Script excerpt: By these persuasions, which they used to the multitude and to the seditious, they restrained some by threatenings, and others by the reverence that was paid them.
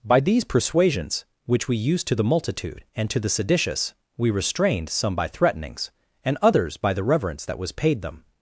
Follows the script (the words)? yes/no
no